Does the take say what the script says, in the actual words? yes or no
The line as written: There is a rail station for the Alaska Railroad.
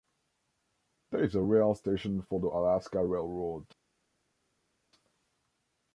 yes